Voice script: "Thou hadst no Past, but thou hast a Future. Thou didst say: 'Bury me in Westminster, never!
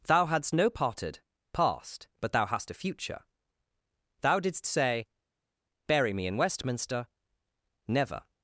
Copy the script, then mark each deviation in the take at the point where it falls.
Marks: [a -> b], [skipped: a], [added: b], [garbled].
"Thou hadst no [added: parted] Past, but thou hast a Future. Thou didst say: 'Bury me in Westminster, never!